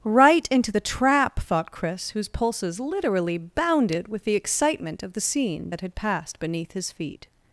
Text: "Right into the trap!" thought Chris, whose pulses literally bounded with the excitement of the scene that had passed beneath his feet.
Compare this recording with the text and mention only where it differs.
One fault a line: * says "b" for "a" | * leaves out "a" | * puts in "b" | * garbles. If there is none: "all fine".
all fine